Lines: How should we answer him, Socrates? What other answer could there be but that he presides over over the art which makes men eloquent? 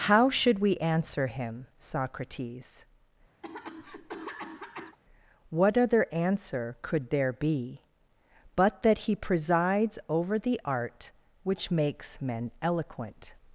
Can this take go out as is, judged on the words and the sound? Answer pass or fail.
fail